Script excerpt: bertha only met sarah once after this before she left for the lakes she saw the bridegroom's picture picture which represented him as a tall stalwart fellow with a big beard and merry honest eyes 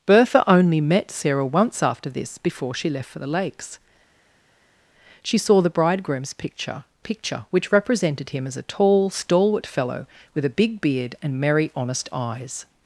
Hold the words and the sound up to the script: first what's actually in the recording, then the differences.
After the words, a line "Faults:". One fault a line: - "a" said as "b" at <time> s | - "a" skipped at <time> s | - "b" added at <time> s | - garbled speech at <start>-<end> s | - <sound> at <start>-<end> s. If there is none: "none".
bertha only met sarah once after this before she left for the lakes she saw the bridegroom's picture picture which represented him as a tall stalwart fellow with a big beard and merry honest eyes
Faults:
none